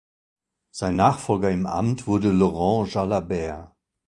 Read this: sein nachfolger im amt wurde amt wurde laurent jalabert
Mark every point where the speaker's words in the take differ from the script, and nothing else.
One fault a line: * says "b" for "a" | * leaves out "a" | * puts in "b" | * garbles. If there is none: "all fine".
* leaves out "amt wurde"